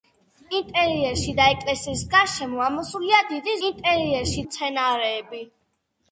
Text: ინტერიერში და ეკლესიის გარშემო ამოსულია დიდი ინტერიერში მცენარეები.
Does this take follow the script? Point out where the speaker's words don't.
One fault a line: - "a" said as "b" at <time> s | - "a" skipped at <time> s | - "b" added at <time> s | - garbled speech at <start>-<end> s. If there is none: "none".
none